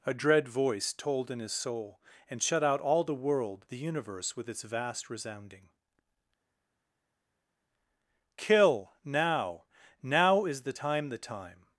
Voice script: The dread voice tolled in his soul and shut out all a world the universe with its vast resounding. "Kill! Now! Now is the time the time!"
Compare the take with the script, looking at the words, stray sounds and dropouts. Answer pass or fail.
fail